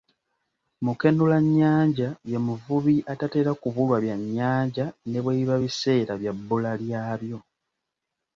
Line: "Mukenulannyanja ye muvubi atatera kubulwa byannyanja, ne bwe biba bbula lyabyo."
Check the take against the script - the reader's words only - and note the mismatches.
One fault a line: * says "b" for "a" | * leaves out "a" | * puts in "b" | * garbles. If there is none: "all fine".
* puts in "biseera bya"